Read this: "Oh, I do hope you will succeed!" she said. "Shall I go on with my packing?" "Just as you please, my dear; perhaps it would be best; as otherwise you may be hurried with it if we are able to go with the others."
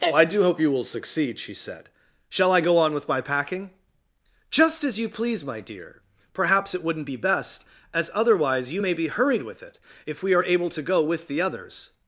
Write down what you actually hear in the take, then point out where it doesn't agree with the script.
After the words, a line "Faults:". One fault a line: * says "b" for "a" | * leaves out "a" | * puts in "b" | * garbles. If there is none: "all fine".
"Oh, I do hope you will succeed!" she said. "Shall I go on with my packing?" "Just as you please, my dear; perhaps it wouldn't be best; as otherwise you may be hurried with it if we are able to go with the others."
Faults:
* says "wouldn't" for "would"